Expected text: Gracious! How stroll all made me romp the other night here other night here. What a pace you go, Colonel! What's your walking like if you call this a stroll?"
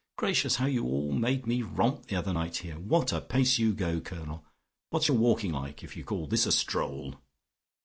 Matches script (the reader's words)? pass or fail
fail